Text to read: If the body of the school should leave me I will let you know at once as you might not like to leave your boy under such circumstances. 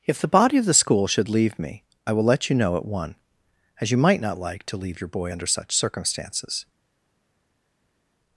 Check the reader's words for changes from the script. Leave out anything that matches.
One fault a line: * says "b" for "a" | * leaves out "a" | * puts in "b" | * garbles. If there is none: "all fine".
* says "one" for "once"